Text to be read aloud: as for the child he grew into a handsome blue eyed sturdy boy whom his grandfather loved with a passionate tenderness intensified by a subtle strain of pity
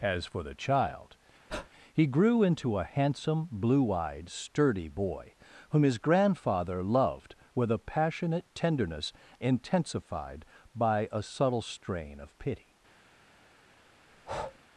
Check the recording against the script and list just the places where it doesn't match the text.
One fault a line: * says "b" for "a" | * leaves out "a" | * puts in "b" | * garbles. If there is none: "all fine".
all fine